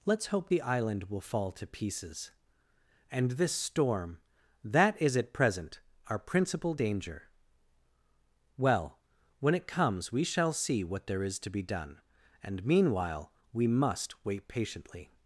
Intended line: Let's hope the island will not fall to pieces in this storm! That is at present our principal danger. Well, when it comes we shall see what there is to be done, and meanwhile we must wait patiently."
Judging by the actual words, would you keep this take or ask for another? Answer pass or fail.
fail